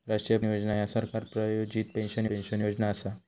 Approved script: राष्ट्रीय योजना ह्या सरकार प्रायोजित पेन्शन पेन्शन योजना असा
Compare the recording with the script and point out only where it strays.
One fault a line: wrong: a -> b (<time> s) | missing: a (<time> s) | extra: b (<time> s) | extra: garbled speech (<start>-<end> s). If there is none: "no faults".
no faults